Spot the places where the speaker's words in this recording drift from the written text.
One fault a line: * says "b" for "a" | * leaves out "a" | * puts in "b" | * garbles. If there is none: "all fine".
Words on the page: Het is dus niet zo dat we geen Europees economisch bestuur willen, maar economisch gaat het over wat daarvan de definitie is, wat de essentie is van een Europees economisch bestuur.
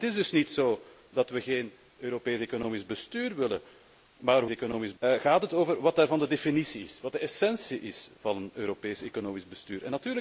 all fine